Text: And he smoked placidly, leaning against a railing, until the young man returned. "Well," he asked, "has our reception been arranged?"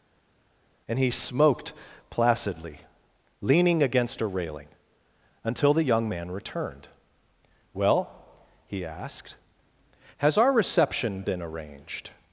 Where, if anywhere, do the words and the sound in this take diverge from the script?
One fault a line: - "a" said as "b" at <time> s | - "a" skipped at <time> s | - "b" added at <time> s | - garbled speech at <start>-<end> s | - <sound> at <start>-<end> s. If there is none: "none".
none